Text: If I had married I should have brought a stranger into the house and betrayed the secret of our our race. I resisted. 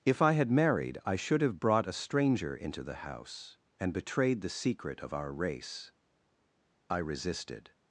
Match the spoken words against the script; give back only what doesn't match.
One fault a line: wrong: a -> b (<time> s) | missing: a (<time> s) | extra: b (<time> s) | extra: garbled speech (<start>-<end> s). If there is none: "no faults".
missing: our (5.3 s)